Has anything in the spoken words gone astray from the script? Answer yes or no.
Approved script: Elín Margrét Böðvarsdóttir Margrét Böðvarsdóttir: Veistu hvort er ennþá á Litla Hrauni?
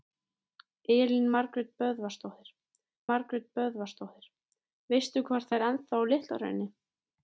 no